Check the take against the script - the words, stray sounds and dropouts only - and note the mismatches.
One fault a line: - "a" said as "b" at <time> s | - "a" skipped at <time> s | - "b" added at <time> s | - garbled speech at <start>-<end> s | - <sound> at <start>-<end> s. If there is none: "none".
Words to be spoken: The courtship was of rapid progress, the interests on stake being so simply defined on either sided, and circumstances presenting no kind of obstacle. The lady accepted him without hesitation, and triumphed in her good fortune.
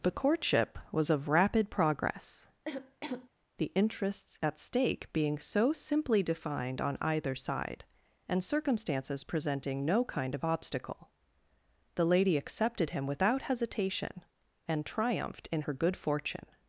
- cough at 2.7-3.3 s
- "on" said as "at" at 4.4 s
- "sided" said as "side" at 7.3 s